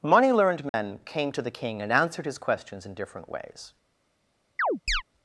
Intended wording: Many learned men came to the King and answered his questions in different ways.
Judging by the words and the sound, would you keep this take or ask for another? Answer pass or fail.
fail